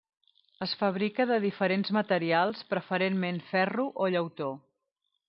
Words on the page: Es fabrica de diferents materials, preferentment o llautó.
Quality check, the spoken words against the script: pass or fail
fail